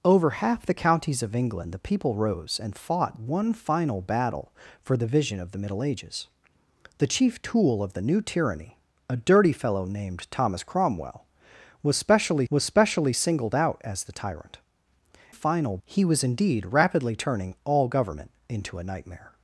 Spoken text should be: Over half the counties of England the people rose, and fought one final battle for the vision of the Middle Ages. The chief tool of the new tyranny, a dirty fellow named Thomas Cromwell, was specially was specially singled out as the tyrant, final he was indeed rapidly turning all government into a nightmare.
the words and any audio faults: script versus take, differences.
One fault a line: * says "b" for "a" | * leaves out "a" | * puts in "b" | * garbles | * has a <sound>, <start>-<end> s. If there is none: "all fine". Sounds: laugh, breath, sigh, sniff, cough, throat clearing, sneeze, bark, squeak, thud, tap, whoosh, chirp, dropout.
all fine